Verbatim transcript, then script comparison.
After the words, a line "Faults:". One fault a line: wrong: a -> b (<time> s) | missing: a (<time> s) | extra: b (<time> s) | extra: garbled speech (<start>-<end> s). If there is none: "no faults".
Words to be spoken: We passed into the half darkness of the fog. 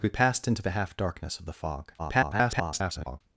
We passed into the half darkness of the fog. [garbled]
Faults:
extra: garbled speech (2.0-3.2 s)